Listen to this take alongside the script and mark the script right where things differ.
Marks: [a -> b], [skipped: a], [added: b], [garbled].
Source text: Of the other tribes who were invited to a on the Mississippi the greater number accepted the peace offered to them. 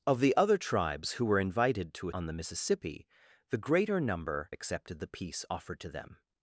Of the other tribes who were invited to a on the Mississippi the greater number accepted the peace offered to them.